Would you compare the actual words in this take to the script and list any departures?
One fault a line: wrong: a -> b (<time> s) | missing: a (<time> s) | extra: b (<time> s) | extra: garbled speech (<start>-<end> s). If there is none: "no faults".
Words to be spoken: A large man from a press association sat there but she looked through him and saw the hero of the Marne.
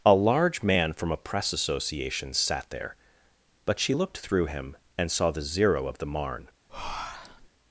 wrong: hero -> zero (5.4 s)